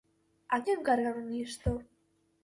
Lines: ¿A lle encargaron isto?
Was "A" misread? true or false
false